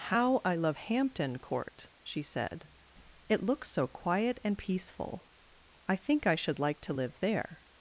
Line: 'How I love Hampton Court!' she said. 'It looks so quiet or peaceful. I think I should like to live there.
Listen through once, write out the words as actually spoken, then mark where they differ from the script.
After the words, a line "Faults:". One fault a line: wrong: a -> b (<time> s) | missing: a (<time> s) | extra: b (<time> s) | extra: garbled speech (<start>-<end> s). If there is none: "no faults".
'How I love Hampton Court!' she said. 'It looks so quiet and peaceful. I think I should like to live there.
Faults:
wrong: or -> and (4.4 s)